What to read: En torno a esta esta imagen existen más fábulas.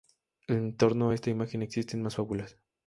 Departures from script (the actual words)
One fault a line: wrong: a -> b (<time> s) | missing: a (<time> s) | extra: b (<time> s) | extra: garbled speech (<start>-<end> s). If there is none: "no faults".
missing: esta (1.3 s)